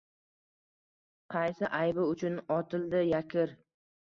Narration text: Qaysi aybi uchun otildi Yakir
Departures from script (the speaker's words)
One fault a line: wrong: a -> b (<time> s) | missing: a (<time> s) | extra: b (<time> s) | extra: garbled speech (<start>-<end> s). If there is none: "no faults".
no faults